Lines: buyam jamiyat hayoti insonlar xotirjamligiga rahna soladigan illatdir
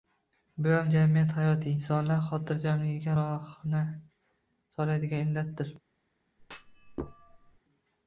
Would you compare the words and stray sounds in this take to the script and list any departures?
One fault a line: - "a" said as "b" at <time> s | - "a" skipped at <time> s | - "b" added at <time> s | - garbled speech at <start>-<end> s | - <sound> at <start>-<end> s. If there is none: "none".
- thud at 6.4-7.6 s